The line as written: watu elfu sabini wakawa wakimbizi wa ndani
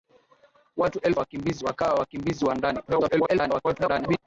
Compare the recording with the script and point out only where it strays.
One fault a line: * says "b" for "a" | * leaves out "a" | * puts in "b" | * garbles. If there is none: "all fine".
* says "wakimbizi" for "sabini"
* garbles